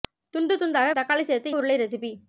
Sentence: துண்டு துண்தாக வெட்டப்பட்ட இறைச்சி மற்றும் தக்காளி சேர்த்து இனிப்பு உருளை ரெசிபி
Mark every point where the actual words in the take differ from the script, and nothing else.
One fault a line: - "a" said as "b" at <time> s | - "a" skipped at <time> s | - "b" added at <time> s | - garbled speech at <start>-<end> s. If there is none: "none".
- "வெட்டப்பட்ட இறைச்சி மற்றும்" skipped at 0.9 s
- "இனிப்பு" skipped at 1.6 s